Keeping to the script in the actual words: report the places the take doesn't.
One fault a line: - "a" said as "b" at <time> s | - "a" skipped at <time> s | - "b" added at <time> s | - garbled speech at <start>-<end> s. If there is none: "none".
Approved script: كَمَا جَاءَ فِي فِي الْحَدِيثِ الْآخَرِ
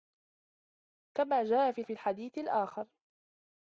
none